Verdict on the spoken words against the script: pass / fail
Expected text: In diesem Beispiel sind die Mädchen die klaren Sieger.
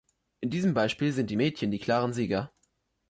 pass